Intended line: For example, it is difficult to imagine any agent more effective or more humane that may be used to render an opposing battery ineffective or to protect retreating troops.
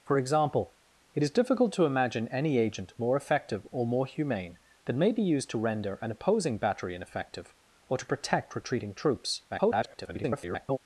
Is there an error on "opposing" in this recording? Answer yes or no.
no